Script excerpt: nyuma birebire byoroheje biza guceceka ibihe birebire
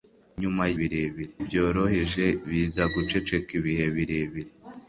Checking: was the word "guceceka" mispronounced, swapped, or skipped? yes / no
no